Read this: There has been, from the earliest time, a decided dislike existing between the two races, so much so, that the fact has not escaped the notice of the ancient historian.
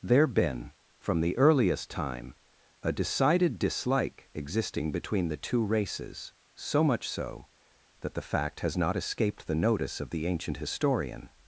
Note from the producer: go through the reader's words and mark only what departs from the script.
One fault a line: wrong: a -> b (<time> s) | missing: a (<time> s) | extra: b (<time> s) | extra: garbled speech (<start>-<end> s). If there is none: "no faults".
missing: has (0.3 s)